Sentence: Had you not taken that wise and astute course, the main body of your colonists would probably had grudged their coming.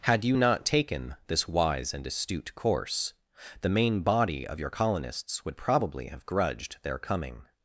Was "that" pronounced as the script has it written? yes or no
no